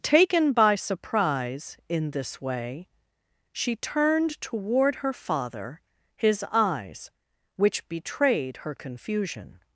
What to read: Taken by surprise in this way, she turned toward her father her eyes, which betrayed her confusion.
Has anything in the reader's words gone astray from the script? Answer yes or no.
yes